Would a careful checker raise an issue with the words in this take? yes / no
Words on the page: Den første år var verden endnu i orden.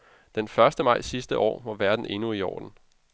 yes